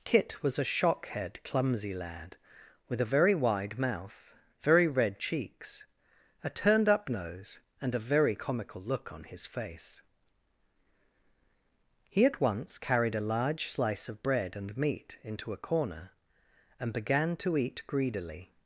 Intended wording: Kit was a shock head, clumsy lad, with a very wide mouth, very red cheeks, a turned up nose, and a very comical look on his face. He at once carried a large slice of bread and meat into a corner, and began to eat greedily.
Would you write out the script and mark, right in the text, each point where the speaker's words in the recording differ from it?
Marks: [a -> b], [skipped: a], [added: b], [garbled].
Kit was a shock head, clumsy lad, with a very wide mouth, very red cheeks, a turned up nose, and a very comical look on his face. He at once carried a large slice of bread and meat into a corner, and began to eat greedily.